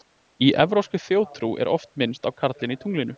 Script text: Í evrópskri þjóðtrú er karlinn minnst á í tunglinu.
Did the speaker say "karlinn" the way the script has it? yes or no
no